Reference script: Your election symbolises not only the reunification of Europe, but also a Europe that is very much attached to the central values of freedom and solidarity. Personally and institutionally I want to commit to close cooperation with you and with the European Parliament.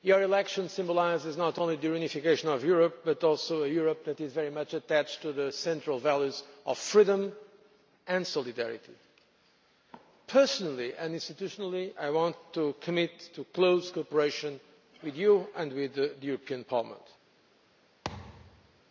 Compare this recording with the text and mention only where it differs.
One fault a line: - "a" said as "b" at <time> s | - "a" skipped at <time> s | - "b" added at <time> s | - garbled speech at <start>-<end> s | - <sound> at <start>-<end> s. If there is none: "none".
- thud at 18.0-18.8 s